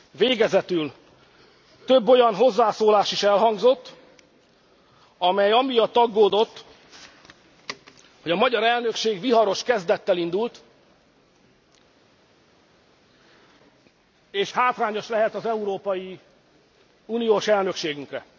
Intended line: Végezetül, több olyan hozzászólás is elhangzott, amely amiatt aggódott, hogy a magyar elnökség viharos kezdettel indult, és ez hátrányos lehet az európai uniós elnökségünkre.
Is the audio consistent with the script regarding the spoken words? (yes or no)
no